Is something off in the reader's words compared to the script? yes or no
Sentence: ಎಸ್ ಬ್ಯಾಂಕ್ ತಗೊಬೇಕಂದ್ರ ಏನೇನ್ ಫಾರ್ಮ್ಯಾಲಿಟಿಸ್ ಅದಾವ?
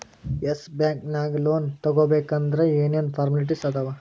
yes